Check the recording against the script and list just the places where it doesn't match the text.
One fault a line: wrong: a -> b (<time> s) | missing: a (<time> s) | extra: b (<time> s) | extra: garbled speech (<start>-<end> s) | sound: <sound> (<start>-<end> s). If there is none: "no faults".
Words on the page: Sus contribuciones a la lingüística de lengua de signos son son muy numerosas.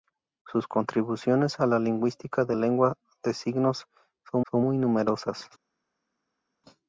no faults